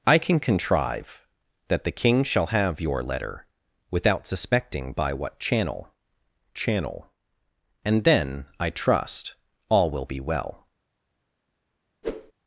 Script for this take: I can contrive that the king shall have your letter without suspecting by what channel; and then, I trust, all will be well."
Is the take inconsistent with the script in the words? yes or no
yes